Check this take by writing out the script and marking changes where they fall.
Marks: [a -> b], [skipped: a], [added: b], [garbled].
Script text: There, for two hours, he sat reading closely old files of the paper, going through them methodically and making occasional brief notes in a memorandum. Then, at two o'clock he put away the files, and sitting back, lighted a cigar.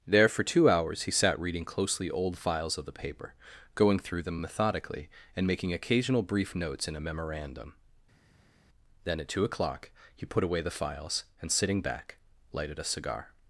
There, for two hours, he sat reading closely old files of the paper, going through them methodically and making occasional brief notes in a memorandum. Then, at two o'clock he put away the files, and sitting back, lighted a cigar.